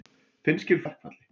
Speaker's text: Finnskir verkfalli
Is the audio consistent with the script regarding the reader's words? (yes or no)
yes